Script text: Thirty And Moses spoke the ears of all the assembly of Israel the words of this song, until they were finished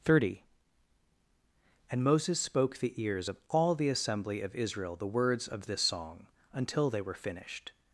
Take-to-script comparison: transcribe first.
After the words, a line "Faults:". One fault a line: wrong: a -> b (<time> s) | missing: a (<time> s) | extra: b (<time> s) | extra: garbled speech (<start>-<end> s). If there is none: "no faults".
Thirty And Moses spoke the ears of all the assembly of Israel the words of this song, until they were finished
Faults:
no faults